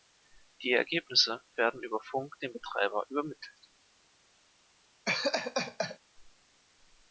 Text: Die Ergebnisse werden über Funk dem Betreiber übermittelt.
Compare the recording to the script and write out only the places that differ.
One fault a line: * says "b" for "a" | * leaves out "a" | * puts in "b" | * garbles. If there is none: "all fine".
all fine